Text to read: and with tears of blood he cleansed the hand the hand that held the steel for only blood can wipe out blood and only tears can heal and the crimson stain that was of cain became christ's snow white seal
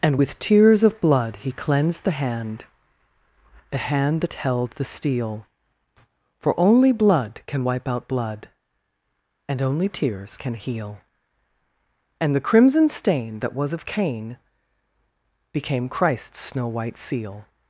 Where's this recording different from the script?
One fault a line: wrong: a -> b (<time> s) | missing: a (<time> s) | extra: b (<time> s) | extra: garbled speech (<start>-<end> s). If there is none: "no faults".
no faults